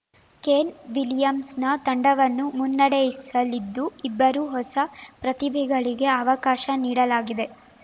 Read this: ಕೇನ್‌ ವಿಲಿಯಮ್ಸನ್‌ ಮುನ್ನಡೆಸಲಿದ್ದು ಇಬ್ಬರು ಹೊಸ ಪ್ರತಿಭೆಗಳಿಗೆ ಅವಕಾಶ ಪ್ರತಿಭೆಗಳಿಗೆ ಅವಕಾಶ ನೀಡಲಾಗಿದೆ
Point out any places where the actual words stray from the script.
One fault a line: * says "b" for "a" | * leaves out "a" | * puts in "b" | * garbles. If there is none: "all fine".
* puts in "ತಂಡವನ್ನು"
* leaves out "ಪ್ರತಿಭೆಗಳಿಗೆ ಅವಕಾಶ"